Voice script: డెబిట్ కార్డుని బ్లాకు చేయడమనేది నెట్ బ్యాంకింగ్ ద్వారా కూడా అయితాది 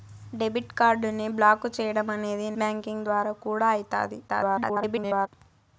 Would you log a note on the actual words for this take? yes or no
yes